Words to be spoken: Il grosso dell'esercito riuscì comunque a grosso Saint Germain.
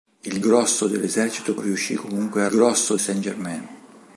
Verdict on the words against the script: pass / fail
pass